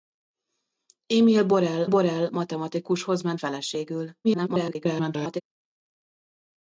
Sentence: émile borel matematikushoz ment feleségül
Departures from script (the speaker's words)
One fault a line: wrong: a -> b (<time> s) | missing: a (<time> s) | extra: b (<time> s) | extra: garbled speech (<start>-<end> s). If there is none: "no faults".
extra: borel (1.9 s)
extra: garbled speech (4.2-5.4 s)